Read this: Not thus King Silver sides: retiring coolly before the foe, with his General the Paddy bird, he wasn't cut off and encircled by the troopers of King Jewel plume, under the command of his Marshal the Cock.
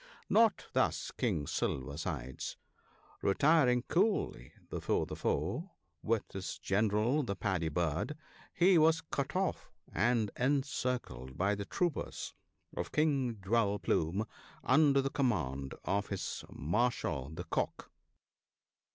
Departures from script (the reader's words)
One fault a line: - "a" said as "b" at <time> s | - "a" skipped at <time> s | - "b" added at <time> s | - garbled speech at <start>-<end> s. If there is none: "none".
- "wasn't" said as "was" at 8.8 s